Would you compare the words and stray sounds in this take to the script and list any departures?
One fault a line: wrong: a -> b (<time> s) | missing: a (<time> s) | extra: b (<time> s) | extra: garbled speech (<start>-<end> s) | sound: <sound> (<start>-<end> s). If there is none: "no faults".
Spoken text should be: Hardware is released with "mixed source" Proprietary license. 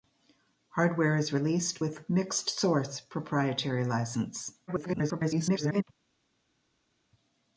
extra: garbled speech (4.7-5.8 s)